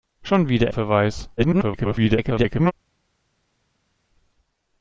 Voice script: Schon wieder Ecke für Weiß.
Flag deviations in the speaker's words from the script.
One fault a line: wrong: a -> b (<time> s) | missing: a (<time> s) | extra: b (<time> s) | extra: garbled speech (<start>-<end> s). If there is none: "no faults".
missing: Ecke (0.7 s)
extra: garbled speech (1.4-2.7 s)